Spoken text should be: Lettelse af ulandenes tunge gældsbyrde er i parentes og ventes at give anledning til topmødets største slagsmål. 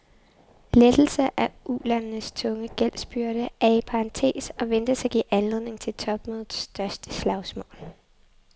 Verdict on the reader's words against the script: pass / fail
pass